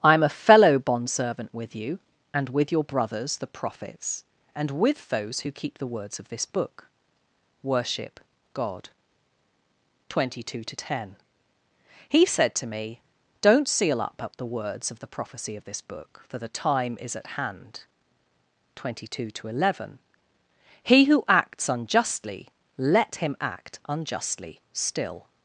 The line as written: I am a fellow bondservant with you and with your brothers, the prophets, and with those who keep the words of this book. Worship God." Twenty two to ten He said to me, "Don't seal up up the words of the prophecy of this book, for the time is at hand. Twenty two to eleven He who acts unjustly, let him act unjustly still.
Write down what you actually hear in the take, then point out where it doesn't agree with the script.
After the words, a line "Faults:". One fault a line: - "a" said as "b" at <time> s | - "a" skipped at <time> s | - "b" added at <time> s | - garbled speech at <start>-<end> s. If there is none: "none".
I am a fellow bondservant with you and with your brothers, the prophets, and with those who keep the words of this book. Worship God." Twenty two to ten He said to me, "Don't seal up up the words of the prophecy of this book, for the time is at hand. Twenty two to eleven He who acts unjustly, let him act unjustly still.
Faults:
none